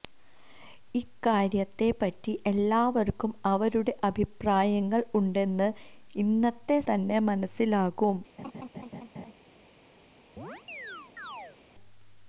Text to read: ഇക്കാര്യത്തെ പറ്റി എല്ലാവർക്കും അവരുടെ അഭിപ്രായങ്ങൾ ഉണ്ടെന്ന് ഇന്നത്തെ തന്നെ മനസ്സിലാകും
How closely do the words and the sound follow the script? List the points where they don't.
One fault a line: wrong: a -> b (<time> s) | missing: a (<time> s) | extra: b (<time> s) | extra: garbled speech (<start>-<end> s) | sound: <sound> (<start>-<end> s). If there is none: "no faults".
sound: laugh (8.4-9.3 s)
sound: chirp (10.4-11.6 s)